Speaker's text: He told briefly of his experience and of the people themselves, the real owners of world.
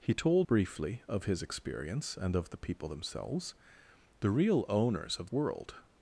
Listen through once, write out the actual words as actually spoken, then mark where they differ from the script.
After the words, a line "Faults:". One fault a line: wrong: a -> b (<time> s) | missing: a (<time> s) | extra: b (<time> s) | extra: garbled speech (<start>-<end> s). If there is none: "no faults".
He told briefly of his experience and of the people themselves, the real owners of world.
Faults:
no faults